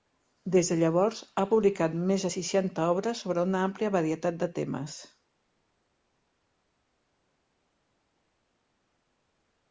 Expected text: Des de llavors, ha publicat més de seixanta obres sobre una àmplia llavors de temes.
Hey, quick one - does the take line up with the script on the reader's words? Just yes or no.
no